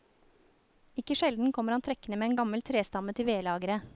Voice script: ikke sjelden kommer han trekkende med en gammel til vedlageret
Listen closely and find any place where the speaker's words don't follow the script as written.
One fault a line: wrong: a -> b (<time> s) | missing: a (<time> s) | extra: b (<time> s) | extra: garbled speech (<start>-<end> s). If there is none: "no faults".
extra: trestamme (2.6 s)